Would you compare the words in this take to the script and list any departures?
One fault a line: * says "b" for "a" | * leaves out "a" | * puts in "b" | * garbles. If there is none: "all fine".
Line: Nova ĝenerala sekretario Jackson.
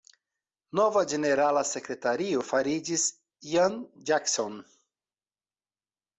* puts in "fariĝis Ian"